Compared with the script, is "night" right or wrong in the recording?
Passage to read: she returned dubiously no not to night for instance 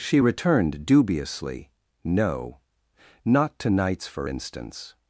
wrong